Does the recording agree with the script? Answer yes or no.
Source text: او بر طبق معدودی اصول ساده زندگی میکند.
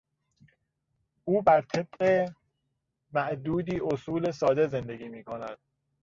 yes